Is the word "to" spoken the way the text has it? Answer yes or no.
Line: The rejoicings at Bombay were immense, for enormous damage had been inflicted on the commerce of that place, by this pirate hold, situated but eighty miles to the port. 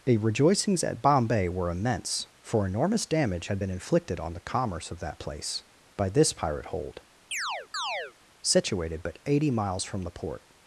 no